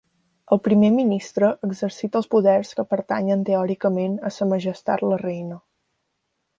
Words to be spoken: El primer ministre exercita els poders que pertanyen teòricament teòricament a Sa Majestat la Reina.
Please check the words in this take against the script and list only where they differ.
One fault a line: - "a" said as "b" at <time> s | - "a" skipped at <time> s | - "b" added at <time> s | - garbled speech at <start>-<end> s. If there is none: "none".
- "teòricament" skipped at 4.2 s